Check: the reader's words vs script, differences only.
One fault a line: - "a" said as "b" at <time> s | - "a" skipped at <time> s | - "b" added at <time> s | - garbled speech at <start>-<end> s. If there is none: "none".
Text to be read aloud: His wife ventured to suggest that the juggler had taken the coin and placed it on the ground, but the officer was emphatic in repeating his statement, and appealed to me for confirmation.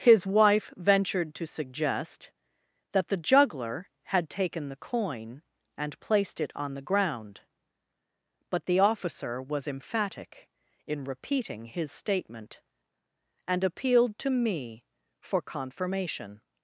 none